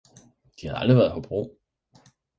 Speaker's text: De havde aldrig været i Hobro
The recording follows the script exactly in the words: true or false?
true